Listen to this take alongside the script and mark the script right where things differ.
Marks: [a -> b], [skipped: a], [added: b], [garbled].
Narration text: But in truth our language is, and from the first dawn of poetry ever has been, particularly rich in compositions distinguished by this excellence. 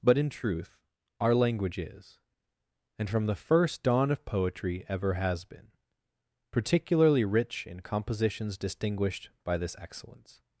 But in truth our language is, and from the first dawn of poetry ever has been, particularly rich in compositions distinguished by this excellence.